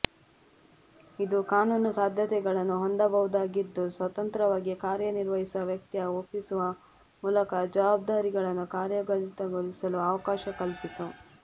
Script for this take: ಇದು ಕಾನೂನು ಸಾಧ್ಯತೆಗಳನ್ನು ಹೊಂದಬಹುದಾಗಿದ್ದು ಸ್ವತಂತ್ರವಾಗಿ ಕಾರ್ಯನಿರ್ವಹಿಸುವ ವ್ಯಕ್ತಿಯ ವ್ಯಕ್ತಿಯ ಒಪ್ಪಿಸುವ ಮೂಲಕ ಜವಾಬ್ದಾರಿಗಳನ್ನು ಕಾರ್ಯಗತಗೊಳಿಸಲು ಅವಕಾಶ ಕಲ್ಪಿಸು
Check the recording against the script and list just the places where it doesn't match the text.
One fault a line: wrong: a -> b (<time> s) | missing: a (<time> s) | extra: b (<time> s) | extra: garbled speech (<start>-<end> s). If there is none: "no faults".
missing: ವ್ಯಕ್ತಿಯ (6.0 s)